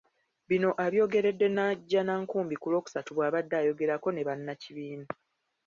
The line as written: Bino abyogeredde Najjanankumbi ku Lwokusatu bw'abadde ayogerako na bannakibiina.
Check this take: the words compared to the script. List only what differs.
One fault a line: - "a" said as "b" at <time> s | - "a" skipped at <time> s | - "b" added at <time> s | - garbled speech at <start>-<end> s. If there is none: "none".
- "na" said as "ne" at 4.1 s